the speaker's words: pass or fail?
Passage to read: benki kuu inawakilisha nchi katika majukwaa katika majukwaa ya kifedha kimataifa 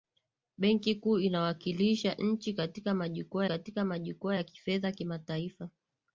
pass